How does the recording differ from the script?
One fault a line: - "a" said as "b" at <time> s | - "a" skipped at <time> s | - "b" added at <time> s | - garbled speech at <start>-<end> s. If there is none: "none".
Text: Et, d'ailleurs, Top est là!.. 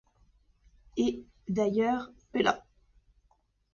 - "Top" skipped at 2.1 s